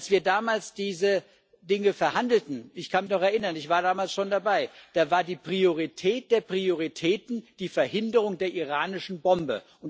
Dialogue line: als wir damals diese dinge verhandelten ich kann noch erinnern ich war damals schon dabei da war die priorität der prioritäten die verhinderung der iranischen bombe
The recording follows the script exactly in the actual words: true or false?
true